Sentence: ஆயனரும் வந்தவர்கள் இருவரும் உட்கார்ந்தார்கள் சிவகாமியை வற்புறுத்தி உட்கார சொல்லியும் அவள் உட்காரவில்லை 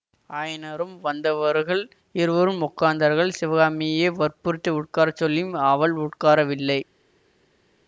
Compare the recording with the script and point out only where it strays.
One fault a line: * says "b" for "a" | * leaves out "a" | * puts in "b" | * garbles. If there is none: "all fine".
all fine